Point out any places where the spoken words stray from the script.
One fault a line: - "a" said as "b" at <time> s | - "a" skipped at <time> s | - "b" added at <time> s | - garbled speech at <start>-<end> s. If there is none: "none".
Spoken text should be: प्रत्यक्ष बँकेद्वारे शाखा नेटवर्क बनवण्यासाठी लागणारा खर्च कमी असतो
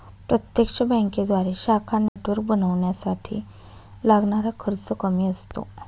none